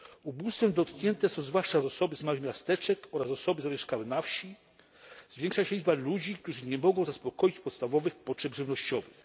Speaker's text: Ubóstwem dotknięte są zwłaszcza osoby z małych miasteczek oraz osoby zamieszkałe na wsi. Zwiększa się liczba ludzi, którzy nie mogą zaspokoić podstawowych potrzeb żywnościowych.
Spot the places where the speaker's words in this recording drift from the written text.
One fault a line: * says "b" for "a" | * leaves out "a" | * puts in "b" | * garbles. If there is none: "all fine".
all fine